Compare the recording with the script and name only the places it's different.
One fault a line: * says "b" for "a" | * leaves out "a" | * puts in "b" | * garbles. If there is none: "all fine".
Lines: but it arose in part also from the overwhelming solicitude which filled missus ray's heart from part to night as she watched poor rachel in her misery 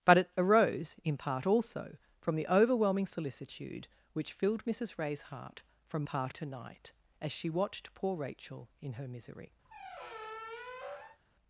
all fine